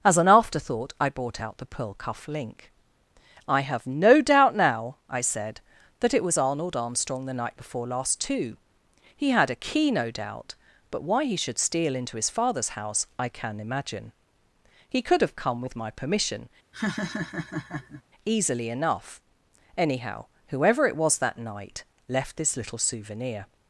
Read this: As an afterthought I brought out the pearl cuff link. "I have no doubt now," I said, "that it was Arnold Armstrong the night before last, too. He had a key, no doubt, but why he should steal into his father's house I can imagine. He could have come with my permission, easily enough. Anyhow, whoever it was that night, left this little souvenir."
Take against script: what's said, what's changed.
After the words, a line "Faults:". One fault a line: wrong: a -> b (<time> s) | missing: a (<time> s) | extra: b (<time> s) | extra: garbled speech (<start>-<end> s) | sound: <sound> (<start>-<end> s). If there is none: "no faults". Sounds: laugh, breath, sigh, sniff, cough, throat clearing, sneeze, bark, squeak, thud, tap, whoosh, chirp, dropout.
As an afterthought I brought out the pearl cuff link. "I have no doubt now," I said, "that it was Arnold Armstrong the night before last, too. He had a key, no doubt, but why he should steal into his father's house I can imagine. He could have come with my permission, easily enough. Anyhow, whoever it was that night, left this little souvenir."
Faults:
sound: laugh (16.7-18.0 s)